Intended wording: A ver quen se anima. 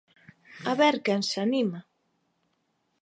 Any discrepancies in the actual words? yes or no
no